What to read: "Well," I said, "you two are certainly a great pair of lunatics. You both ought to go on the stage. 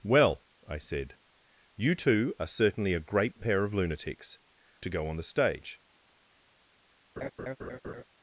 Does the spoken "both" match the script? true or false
false